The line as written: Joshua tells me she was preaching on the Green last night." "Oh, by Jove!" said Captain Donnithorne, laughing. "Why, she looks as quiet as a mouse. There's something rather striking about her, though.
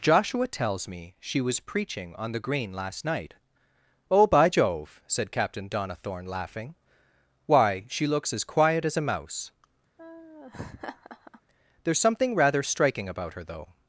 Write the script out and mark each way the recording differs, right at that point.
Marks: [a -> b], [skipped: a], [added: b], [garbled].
Joshua tells me she was preaching on the Green last night." "Oh, by Jove!" said Captain Donnithorne, laughing. "Why, she looks as quiet as a mouse. There's something rather striking about her, though.